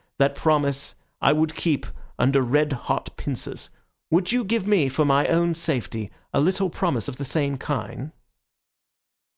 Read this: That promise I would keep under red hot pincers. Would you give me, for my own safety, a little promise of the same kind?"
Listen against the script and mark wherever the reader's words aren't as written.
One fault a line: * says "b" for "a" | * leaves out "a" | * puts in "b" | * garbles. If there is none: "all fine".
all fine